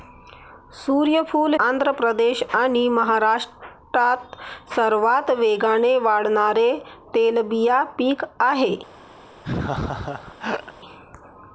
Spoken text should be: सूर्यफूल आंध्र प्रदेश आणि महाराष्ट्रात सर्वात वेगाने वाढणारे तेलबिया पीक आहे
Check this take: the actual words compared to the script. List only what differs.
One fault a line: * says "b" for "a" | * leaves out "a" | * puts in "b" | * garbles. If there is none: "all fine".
all fine